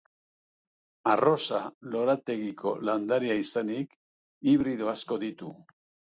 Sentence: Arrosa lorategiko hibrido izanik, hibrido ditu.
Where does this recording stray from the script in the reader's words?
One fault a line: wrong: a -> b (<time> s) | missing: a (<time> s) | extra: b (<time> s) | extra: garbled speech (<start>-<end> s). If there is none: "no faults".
wrong: hibrido -> landarea (2.9 s)
extra: asko (5.0 s)